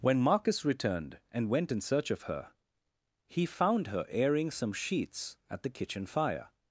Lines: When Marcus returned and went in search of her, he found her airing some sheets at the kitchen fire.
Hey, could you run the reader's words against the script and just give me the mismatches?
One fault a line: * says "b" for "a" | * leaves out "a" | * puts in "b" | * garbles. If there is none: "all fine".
all fine